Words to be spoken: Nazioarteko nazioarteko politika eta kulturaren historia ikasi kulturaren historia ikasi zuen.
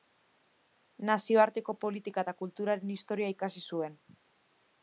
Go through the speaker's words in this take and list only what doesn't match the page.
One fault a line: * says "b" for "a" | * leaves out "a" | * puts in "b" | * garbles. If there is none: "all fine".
* leaves out "nazioarteko"
* leaves out "kulturaren historia ikasi"